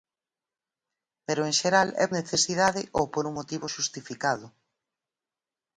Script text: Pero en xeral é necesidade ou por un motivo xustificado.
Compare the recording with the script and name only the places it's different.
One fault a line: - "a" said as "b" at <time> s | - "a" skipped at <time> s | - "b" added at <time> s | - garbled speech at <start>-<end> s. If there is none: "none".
none